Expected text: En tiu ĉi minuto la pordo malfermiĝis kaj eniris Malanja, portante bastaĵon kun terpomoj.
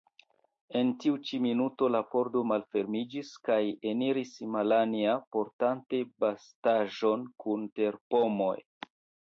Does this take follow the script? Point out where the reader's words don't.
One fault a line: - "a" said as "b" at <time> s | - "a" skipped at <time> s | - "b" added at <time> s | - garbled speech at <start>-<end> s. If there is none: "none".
none